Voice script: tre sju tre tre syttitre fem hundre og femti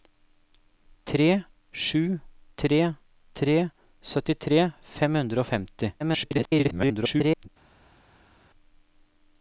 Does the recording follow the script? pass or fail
fail